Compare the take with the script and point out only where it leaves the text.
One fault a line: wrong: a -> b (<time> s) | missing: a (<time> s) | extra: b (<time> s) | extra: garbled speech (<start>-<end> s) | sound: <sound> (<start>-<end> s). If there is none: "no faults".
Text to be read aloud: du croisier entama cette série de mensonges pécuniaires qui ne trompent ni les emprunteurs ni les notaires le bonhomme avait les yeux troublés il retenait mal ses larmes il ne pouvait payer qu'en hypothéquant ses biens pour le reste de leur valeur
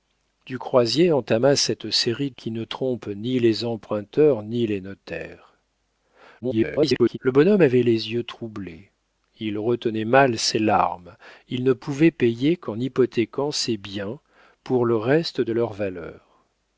missing: de mensonges pécuniaires (2.3 s)
extra: garbled speech (6.4-7.2 s)